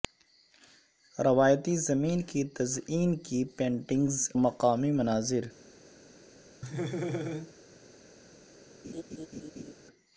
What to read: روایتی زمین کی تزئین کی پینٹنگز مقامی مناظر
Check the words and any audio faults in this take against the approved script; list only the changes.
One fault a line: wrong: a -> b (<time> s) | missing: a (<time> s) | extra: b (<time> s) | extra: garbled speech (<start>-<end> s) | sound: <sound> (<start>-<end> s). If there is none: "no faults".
sound: laugh (6.6-7.5 s)
sound: laugh (8.8-9.7 s)